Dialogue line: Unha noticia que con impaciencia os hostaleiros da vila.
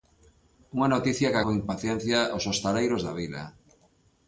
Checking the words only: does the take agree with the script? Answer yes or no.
yes